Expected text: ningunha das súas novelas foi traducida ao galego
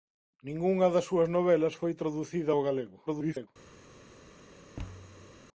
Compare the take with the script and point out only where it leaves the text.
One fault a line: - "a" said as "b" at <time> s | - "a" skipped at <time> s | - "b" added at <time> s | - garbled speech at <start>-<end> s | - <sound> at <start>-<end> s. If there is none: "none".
- garbled speech at 3.1-3.5 s
- thud at 4.8-5.3 s